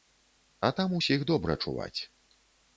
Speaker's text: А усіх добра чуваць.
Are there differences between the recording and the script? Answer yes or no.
yes